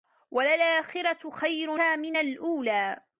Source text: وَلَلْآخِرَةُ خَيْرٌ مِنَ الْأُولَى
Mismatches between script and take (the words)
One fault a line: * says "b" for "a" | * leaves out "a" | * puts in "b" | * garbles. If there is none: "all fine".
all fine